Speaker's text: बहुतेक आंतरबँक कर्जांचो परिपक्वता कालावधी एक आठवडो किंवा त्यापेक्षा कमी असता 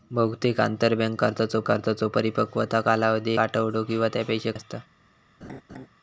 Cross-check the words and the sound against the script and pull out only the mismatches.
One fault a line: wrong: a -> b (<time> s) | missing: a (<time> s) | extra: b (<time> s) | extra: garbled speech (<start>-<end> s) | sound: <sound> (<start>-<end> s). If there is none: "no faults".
extra: कर्जांचो (1.7 s)
missing: एक (3.3 s)
missing: कमी (4.5 s)
sound: laugh (5.4-5.9 s)